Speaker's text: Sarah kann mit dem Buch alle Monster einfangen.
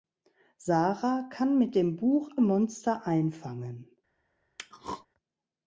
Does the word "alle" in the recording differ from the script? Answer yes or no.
yes